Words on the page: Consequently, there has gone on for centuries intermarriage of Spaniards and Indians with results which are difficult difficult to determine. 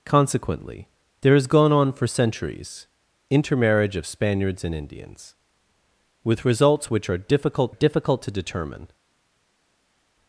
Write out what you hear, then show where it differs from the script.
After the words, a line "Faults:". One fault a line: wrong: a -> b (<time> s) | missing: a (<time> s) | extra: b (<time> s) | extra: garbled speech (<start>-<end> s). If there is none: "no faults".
Consequently, there has gone on for centuries intermarriage of Spaniards and Indians with results which are difficult difficult to determine.
Faults:
no faults